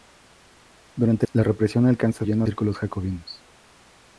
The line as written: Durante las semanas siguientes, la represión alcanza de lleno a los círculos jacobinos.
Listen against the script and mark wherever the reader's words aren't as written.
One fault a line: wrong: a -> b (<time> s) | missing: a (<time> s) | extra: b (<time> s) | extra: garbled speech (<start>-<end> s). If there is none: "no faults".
missing: las semanas siguientes (1.3 s)
missing: de (2.3 s)
missing: los (2.5 s)